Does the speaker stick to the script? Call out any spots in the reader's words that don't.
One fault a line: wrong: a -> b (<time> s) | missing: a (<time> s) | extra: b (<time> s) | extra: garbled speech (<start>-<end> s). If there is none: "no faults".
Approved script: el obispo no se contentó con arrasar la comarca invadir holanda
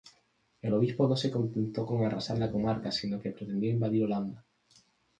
extra: sino que pretendió (2.9 s)